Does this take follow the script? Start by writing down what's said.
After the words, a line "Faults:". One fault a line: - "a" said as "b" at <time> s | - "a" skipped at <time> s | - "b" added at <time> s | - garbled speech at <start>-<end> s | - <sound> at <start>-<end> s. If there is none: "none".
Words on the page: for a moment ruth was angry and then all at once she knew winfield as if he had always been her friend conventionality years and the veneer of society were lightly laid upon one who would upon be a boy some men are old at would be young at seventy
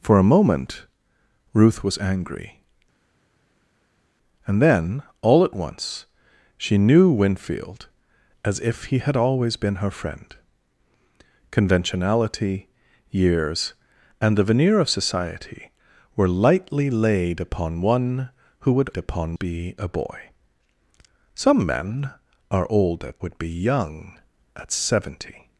for a moment ruth was angry and then all at once she knew winfield as if he had always been her friend conventionality years and the veneer of society were lightly laid upon one who would upon be a boy some men are old at would be young at seventy
Faults:
none